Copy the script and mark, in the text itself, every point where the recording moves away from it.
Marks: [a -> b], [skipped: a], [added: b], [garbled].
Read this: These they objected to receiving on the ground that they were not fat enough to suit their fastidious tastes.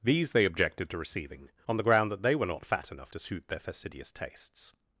These they objected to receiving on the ground that they were not fat enough to suit their fastidious tastes.